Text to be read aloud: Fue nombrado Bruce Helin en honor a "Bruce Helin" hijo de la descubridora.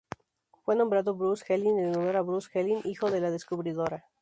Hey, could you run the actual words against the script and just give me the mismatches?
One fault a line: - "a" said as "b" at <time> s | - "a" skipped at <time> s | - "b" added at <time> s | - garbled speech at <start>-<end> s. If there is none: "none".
none